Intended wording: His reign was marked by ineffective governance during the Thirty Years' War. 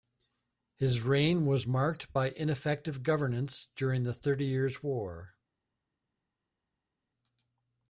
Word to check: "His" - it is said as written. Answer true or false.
true